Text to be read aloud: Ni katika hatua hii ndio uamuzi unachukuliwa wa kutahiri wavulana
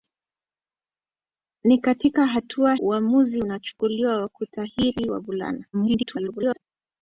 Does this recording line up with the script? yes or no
no